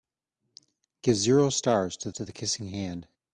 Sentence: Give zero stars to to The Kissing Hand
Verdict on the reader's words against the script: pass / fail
pass